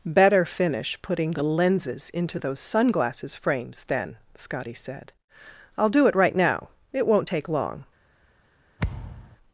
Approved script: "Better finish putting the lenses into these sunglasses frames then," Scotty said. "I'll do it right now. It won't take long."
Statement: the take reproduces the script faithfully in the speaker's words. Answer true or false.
false